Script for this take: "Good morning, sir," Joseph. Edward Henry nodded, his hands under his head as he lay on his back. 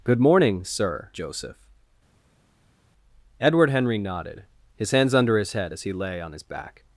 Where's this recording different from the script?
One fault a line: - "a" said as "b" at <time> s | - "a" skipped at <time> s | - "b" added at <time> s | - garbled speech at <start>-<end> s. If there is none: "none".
none